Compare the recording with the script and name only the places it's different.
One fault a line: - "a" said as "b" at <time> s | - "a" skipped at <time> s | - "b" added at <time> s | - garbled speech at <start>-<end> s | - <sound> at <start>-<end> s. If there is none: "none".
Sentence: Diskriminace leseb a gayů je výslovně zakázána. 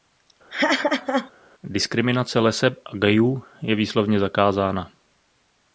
- laugh at 0.5-1.3 s